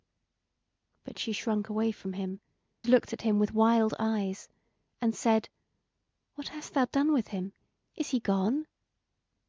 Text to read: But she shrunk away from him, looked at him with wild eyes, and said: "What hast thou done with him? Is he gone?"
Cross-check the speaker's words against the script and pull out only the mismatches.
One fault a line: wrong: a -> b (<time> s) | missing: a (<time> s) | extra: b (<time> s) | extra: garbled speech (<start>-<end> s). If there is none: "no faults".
no faults